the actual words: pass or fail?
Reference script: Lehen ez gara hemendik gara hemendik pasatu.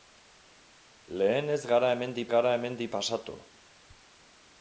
pass